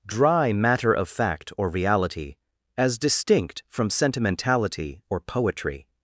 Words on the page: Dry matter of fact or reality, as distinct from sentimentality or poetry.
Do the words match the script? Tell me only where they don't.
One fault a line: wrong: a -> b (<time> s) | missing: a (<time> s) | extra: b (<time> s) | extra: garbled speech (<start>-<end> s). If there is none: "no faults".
no faults